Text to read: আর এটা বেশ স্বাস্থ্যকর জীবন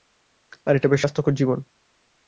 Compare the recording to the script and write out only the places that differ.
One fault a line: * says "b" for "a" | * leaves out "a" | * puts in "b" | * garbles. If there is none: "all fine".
all fine